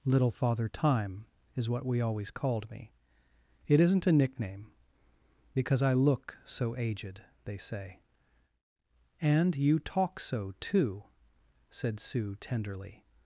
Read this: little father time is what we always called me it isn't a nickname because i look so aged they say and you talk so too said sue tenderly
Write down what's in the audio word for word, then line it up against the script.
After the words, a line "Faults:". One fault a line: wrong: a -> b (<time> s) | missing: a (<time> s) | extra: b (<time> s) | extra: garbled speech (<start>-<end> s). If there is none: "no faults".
little father time is what we always called me it isn't a nickname because i look so aged they say and you talk so too said sue tenderly
Faults:
no faults